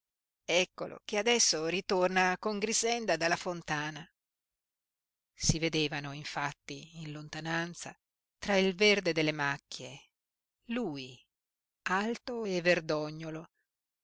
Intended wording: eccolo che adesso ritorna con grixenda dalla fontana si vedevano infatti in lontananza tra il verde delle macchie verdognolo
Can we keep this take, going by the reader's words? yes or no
no